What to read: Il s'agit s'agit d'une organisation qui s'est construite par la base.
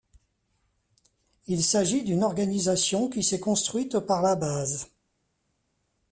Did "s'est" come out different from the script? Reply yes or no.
no